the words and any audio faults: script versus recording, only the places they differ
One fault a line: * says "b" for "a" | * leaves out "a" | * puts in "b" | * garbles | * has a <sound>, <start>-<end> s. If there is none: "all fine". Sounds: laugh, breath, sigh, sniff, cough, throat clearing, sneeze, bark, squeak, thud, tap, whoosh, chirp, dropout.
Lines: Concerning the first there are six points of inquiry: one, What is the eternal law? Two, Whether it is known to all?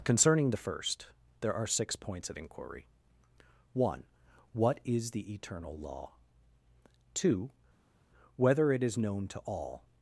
all fine